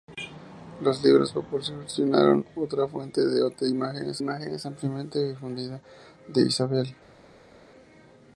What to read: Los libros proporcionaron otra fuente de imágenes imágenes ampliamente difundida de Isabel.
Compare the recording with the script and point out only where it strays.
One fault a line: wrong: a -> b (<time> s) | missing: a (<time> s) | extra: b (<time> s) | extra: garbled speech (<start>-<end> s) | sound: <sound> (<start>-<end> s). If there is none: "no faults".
no faults